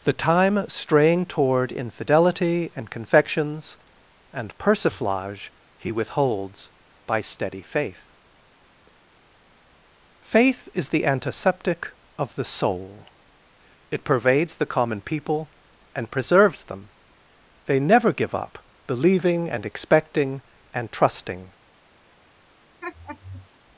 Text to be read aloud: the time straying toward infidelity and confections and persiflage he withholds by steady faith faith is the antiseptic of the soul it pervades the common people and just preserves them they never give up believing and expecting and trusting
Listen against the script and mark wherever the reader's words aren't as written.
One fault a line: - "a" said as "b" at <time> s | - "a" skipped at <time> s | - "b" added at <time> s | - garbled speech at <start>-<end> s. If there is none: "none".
- "just" skipped at 16.1 s